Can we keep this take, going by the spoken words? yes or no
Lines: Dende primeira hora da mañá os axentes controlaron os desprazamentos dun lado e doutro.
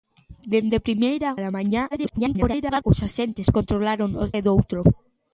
no